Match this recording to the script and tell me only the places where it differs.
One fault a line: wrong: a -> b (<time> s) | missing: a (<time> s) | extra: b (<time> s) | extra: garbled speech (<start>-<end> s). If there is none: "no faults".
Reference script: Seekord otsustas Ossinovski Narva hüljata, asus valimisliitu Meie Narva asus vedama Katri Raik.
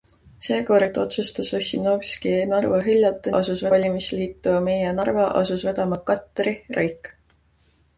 no faults